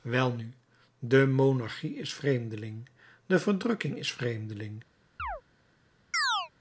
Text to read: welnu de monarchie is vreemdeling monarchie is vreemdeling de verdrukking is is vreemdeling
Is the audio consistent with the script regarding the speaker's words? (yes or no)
no